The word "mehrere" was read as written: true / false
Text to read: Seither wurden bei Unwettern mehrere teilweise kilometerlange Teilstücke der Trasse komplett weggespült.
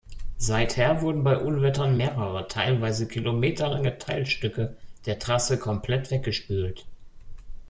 true